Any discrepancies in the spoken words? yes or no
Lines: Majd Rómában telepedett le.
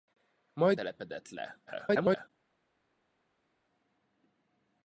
yes